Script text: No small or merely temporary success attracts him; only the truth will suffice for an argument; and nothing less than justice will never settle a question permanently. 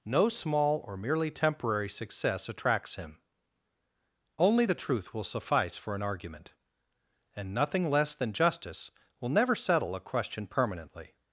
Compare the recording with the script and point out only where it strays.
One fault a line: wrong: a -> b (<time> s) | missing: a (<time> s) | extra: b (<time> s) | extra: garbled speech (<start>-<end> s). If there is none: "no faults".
no faults